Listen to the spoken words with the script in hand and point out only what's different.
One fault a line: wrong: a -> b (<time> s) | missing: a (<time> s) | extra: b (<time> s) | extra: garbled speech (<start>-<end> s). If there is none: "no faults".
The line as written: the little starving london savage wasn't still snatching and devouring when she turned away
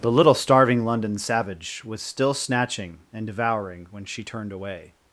wrong: wasn't -> was (1.9 s)